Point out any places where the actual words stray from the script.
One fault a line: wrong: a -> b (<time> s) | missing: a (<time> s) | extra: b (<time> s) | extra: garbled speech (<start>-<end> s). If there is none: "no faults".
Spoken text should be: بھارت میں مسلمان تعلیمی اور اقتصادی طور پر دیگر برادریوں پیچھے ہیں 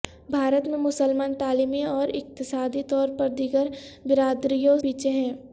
no faults